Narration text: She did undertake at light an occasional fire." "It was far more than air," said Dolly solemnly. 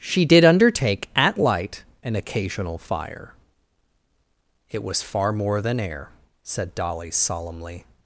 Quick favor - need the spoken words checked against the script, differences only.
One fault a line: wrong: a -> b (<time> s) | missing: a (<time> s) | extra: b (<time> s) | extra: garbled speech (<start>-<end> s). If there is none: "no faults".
no faults